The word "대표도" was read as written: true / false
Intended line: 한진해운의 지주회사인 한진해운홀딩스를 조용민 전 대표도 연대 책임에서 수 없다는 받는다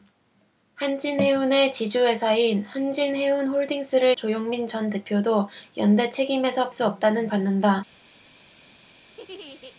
true